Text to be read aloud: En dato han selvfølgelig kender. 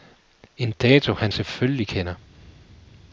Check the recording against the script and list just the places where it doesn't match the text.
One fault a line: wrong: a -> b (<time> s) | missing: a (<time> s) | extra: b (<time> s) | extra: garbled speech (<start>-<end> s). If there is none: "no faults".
no faults